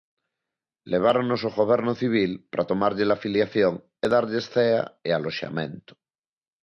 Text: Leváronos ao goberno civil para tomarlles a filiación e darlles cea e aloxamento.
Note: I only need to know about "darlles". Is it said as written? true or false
true